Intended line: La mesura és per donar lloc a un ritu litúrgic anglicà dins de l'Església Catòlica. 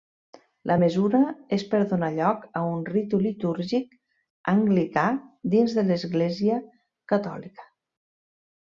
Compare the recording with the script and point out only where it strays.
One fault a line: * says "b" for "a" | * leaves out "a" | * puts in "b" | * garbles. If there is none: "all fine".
all fine